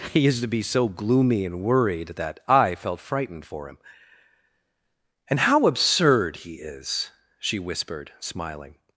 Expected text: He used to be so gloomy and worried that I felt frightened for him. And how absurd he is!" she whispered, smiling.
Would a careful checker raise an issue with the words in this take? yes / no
no